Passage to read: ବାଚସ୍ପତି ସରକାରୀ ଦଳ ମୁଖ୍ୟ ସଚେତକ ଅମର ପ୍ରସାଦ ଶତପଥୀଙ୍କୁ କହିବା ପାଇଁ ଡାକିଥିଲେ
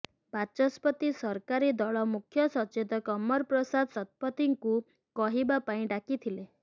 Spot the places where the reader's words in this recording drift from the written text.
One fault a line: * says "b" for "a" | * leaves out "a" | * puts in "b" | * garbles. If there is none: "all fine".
all fine